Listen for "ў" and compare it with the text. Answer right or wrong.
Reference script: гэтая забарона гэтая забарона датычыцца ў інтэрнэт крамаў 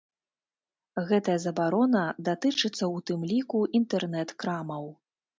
wrong